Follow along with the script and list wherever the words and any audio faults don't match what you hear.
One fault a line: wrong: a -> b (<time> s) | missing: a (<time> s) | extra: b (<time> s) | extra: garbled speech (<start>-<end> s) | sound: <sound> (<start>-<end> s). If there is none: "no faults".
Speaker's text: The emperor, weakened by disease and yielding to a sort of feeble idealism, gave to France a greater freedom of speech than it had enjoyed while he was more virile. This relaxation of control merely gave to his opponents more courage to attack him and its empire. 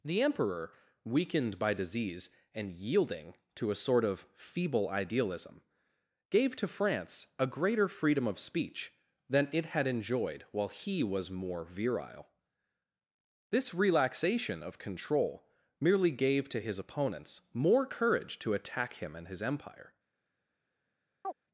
wrong: its -> his (19.3 s)
sound: chirp (21.2-21.3 s)